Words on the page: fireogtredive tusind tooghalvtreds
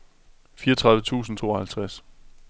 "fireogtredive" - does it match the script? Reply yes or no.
yes